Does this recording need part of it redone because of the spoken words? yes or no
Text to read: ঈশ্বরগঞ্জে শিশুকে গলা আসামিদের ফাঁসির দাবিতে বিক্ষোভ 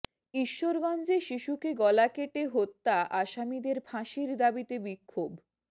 yes